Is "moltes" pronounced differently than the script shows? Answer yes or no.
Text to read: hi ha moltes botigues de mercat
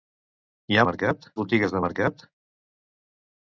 yes